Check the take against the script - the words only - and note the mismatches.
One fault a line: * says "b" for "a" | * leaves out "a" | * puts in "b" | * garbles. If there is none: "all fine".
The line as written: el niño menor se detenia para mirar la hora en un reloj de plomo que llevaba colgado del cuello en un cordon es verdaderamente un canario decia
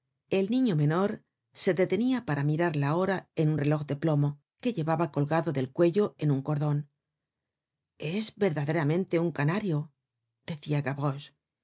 all fine